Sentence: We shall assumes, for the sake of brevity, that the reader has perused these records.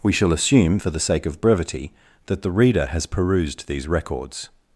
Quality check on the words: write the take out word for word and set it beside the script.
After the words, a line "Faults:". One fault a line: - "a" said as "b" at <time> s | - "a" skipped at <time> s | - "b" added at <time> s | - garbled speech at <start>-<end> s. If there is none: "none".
We shall assume, for the sake of brevity, that the reader has perused these records.
Faults:
- "assumes" said as "assume" at 0.3 s